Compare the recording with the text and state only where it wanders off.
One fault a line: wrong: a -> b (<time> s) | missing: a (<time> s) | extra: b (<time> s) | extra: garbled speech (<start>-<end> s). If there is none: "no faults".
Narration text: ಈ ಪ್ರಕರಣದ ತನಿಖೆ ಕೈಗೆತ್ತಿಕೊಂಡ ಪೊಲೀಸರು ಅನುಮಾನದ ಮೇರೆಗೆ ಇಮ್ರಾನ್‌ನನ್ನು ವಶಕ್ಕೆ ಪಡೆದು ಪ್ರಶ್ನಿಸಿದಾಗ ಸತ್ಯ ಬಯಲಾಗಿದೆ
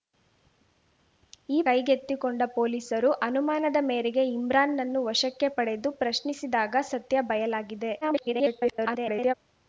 missing: ಪ್ರಕರಣದ ತನಿಖೆ (1.6 s)
extra: garbled speech (8.0-9.3 s)